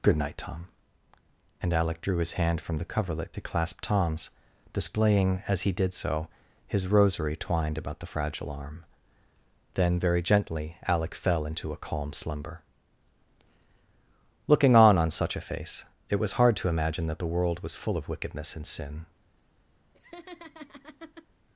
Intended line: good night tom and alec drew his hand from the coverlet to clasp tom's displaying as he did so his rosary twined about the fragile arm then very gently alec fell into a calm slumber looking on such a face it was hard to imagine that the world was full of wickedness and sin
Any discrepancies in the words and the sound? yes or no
yes